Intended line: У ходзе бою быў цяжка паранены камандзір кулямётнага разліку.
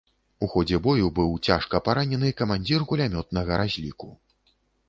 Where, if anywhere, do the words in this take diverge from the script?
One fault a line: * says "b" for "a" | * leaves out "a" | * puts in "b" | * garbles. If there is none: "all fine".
all fine